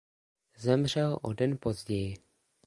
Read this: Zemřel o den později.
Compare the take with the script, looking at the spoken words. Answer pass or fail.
pass